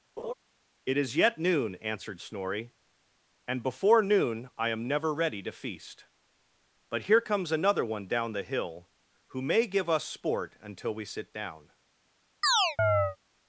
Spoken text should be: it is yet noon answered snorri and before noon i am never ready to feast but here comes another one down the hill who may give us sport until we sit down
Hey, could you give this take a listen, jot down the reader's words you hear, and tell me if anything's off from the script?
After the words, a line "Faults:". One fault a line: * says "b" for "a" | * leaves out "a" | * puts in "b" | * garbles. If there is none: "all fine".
it is yet noon answered snorri and before noon i am never ready to feast but here comes another one down the hill who may give us sport until we sit down
Faults:
all fine